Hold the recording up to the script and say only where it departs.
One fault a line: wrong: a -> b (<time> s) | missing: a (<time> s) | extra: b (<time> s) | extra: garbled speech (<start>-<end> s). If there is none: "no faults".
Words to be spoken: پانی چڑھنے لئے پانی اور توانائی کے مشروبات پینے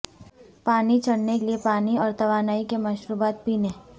no faults